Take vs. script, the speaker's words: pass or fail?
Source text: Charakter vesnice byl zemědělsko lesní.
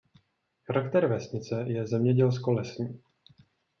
fail